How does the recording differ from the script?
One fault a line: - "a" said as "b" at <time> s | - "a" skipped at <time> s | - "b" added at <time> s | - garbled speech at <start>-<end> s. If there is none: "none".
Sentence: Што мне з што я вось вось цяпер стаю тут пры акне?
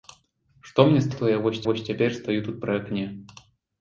none